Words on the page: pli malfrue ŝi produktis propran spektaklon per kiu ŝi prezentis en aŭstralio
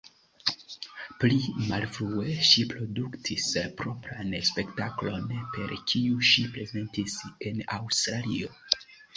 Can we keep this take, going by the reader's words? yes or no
yes